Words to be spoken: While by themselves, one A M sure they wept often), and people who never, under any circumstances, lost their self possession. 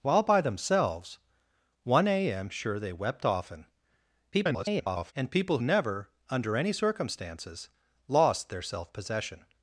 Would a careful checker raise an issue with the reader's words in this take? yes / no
yes